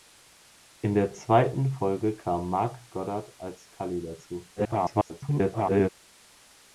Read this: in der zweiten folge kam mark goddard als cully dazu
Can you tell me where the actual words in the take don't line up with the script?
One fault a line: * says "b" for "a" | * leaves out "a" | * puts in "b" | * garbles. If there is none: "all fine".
* garbles